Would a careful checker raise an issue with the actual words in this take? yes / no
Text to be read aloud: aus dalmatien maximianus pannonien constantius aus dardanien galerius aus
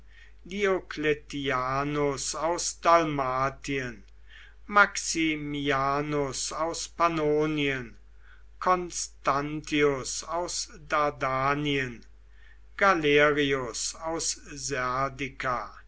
yes